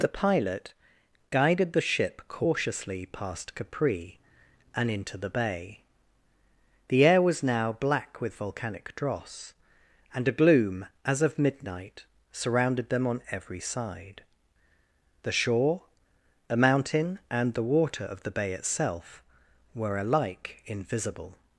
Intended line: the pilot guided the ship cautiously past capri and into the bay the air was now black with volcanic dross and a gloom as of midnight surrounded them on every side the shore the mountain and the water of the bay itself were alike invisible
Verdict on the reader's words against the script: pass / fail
fail